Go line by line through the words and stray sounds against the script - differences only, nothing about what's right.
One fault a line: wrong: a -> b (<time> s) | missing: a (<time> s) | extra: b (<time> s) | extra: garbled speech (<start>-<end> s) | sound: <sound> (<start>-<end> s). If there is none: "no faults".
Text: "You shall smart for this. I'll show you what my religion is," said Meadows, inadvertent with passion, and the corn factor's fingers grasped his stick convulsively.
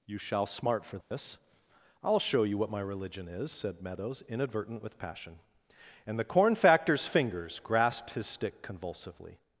sound: dropout (1.0-1.1 s)